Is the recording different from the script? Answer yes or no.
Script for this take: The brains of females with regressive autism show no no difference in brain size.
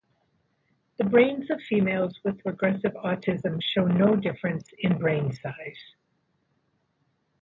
yes